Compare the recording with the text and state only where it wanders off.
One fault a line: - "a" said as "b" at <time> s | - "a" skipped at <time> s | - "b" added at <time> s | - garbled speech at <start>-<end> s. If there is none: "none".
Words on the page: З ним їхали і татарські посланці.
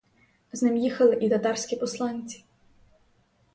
none